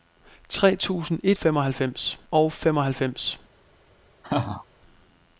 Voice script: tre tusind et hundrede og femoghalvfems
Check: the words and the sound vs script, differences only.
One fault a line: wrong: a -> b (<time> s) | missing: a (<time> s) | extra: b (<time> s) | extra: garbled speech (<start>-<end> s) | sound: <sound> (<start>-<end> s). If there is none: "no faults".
wrong: hundrede -> femoghalvfems (1.3 s)
sound: laugh (4.2-4.7 s)